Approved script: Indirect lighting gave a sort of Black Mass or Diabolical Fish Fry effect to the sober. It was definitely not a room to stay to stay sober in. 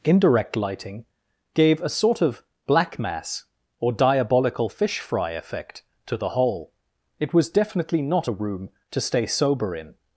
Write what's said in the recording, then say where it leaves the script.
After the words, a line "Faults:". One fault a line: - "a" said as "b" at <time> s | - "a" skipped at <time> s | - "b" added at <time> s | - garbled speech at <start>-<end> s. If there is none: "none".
Indirect lighting gave a sort of Black Mass or Diabolical Fish Fry effect to the whole. It was definitely not a room to stay sober in.
Faults:
- "sober" said as "whole" at 6.3 s
- "to stay" skipped at 9.3 s